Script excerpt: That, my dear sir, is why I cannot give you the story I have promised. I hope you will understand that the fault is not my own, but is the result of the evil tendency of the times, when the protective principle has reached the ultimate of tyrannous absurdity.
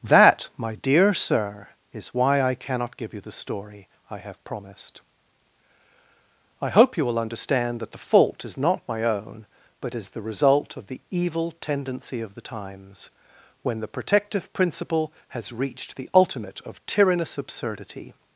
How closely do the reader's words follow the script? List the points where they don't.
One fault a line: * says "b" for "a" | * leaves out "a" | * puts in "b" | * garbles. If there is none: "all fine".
all fine